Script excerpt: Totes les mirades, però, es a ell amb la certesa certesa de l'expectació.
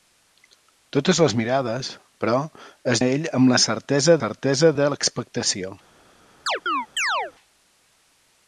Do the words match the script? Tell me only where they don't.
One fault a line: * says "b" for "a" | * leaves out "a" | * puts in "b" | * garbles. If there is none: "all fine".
all fine